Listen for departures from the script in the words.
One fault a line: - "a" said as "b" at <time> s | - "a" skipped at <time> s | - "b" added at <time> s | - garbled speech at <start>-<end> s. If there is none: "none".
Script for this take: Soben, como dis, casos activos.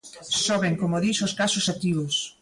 - "os" added at 1.2 s